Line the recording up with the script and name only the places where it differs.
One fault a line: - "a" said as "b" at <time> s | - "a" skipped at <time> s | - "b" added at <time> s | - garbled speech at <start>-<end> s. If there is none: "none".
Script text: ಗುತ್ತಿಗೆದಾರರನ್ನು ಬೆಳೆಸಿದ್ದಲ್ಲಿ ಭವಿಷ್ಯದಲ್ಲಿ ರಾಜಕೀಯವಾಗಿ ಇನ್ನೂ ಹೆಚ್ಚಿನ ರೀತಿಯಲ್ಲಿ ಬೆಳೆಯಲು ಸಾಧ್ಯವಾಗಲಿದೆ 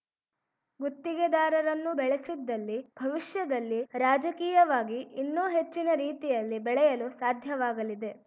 none